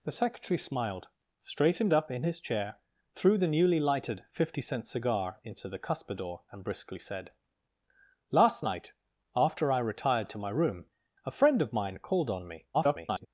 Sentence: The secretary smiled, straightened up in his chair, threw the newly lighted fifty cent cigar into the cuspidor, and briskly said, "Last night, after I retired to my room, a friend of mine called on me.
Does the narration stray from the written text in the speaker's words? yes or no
yes